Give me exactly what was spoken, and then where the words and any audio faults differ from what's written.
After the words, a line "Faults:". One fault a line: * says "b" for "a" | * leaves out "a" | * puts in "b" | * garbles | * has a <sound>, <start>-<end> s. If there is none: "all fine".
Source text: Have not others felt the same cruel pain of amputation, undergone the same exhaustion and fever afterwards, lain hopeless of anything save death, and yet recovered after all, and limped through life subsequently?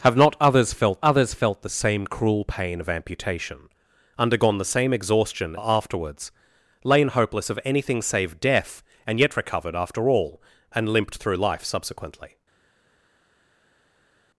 Have not others felt others felt the same cruel pain of amputation, undergone the same exhaustion afterwards, lain hopeless of anything save death, and yet recovered after all, and limped through life subsequently?
Faults:
* puts in "others felt"
* leaves out "and fever"